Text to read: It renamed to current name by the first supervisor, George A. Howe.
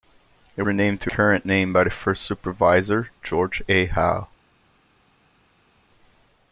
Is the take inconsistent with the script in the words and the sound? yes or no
no